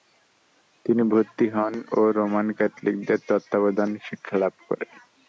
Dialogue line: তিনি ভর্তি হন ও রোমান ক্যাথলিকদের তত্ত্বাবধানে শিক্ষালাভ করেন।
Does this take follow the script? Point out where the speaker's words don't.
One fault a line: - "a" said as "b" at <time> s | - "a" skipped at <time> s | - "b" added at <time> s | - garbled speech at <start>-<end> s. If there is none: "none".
none